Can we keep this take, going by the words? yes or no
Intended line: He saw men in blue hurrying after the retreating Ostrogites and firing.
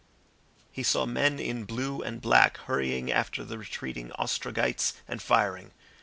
no